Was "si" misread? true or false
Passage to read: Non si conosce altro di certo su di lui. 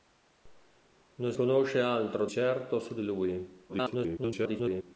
true